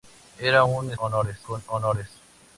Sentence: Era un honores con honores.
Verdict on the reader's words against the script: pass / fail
pass